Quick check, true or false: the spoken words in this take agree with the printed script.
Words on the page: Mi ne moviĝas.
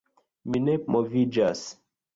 true